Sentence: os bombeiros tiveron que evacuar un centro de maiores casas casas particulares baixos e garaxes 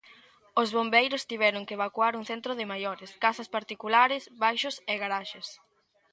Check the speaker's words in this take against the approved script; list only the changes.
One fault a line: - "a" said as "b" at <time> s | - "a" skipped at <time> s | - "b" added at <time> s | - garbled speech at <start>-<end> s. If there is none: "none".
- "casas" skipped at 3.5 s